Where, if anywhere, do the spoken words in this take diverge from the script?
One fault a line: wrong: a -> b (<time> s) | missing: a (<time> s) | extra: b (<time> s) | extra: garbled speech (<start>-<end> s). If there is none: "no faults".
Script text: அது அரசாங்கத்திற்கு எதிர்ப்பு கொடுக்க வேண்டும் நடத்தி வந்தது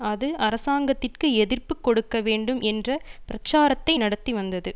extra: என்ற பிரச்சாரத்தை (2.7 s)